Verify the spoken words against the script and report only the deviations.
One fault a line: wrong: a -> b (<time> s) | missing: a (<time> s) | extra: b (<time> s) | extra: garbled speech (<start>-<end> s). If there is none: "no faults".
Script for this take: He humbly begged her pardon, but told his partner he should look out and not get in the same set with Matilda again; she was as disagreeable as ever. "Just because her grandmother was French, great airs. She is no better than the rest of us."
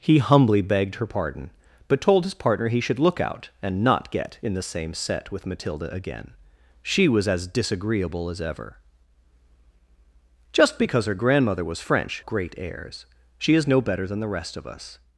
no faults